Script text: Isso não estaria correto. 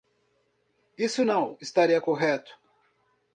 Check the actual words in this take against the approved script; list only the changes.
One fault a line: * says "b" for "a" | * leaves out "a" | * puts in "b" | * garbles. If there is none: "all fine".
all fine